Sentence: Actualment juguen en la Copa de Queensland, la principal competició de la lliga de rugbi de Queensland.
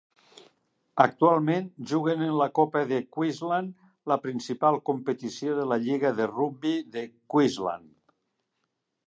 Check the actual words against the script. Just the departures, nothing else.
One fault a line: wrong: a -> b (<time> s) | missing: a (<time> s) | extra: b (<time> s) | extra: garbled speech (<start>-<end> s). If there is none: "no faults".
no faults